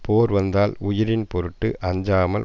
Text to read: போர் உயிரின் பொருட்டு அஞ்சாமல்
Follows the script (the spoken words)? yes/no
no